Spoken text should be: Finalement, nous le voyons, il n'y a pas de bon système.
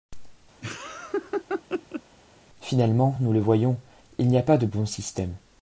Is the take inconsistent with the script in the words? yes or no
no